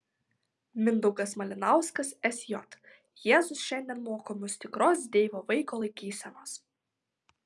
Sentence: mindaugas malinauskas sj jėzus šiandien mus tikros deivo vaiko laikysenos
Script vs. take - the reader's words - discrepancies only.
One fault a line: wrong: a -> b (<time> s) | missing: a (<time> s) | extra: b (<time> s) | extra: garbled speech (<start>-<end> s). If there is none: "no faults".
extra: moko (4.1 s)